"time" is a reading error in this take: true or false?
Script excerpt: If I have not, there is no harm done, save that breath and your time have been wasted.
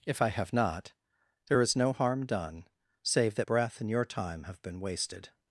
false